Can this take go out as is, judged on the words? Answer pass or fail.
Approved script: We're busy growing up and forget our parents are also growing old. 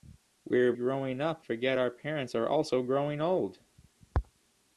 fail